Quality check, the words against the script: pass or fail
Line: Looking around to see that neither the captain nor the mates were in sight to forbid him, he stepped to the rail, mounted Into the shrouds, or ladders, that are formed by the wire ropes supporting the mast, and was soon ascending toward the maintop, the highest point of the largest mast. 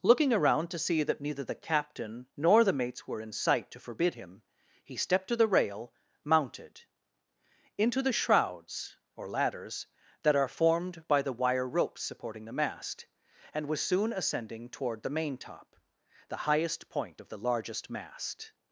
pass